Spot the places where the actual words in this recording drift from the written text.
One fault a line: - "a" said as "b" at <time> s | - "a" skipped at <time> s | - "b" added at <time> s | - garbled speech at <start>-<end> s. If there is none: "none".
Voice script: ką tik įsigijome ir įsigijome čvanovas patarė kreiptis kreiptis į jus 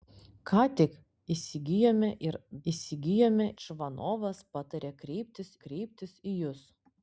none